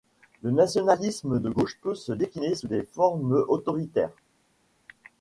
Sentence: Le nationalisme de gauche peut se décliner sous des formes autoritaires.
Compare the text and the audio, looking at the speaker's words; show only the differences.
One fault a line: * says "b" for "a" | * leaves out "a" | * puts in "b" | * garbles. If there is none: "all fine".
all fine